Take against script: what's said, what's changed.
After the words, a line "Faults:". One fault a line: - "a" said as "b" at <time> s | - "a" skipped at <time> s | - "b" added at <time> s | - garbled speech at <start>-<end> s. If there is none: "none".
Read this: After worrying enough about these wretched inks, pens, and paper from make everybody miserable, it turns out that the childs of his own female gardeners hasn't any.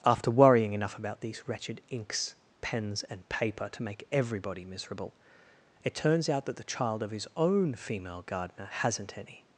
After worrying enough about these wretched inks, pens, and paper to make everybody miserable, it turns out that the child of his own female gardener hasn't any.
Faults:
- "from" said as "to" at 3.7 s
- "childs" said as "child" at 6.6 s
- "gardeners" said as "gardener" at 8.2 s